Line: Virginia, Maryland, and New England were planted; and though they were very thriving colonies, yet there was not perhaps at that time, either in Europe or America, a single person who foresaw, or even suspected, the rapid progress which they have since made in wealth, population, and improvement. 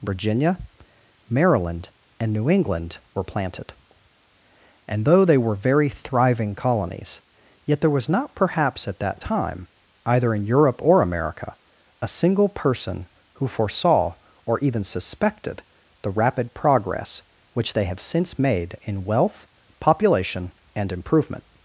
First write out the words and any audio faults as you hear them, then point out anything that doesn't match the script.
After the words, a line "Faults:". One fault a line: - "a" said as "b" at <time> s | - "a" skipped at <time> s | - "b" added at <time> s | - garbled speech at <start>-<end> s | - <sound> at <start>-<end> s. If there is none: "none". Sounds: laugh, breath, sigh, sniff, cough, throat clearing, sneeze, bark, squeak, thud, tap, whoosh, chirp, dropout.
Virginia, Maryland, and New England were planted; and though they were very thriving colonies, yet there was not perhaps at that time, either in Europe or America, a single person who foresaw, or even suspected, the rapid progress which they have since made in wealth, population, and improvement.
Faults:
none